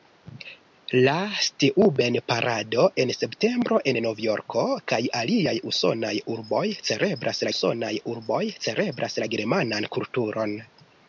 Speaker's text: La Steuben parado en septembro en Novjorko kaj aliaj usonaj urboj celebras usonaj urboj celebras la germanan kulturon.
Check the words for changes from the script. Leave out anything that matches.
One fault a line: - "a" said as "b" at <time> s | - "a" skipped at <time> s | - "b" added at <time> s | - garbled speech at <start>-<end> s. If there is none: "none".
none